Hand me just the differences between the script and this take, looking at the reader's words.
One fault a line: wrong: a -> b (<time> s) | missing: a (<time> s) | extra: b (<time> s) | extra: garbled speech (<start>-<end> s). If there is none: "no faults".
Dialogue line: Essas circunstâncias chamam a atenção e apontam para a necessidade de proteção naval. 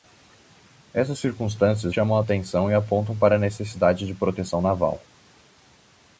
no faults